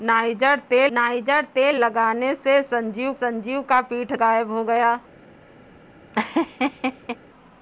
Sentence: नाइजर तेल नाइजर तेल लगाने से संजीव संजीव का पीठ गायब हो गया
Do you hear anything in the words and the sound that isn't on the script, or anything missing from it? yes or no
yes